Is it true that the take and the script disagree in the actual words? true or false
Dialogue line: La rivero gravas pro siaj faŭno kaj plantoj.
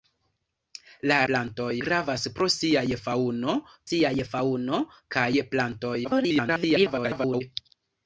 true